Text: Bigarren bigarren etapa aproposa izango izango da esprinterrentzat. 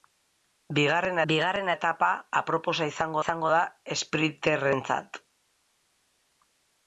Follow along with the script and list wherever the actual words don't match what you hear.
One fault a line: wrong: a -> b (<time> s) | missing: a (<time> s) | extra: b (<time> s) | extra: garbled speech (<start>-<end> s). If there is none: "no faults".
no faults